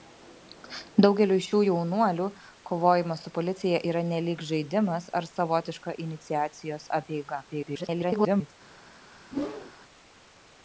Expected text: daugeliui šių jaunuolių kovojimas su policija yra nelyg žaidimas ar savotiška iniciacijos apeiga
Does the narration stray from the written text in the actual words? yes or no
yes